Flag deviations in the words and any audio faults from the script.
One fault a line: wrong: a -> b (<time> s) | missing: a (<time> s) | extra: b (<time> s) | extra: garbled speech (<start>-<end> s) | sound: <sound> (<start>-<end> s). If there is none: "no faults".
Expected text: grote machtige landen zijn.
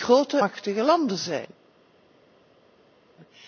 no faults